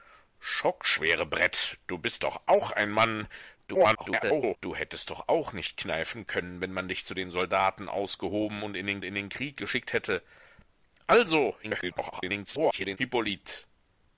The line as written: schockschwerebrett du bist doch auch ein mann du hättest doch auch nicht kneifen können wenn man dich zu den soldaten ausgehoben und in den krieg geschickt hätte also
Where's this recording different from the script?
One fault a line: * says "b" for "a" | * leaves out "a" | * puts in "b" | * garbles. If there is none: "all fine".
* garbles
* puts in "in den"
* garbles